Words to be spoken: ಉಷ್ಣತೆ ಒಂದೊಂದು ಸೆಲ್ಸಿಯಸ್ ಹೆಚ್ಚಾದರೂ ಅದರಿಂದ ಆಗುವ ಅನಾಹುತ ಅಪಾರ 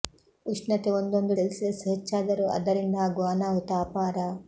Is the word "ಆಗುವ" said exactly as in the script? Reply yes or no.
yes